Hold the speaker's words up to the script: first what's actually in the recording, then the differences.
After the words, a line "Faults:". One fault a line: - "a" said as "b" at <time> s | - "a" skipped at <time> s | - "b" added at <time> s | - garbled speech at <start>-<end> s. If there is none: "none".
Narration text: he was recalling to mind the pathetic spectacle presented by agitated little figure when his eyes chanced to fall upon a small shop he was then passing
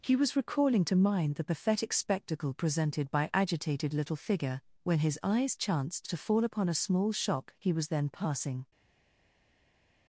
he was recalling to mind the pathetic spectacle presented by agitated little figure when his eyes chanced to fall upon a small shop he was then passing
Faults:
none